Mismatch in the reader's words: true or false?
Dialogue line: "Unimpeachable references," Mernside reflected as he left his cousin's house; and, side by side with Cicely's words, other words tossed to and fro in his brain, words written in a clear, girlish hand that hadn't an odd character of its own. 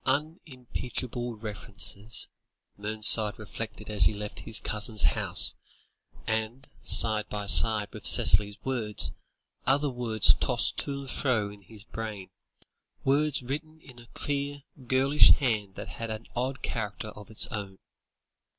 true